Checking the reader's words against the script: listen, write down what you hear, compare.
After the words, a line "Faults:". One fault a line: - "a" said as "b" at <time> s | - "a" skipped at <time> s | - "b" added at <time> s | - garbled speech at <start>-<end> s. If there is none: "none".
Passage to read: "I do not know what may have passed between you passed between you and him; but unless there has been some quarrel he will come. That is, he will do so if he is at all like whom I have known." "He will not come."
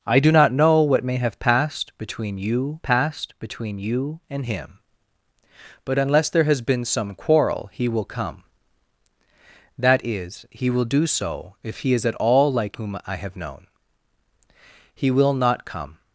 "I do not know what may have passed between you passed between you and him; but unless there has been some quarrel he will come. That is, he will do so if he is at all like whom I have known." "He will not come."
Faults:
none